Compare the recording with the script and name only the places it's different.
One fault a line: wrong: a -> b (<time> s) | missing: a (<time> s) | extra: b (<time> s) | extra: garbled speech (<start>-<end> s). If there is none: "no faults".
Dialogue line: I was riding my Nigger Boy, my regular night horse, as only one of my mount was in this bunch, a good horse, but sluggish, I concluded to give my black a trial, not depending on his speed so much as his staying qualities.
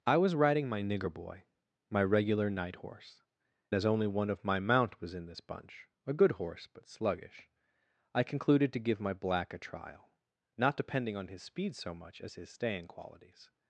no faults